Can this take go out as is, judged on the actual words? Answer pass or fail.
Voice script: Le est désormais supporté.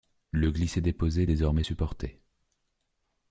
fail